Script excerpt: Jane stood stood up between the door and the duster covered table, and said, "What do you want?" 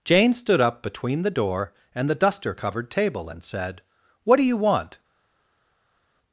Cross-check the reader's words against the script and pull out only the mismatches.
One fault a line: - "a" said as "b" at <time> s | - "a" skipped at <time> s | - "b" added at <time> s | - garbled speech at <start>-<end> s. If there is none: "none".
- "stood" skipped at 0.6 s